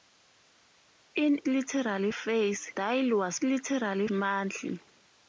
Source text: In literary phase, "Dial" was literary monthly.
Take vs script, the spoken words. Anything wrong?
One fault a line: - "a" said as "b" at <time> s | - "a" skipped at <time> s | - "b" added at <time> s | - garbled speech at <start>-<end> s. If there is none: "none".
none